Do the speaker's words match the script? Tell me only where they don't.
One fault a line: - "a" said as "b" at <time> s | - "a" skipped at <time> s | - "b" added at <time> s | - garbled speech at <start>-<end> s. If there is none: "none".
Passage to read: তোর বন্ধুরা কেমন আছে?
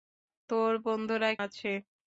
- "কেমন" skipped at 1.3 s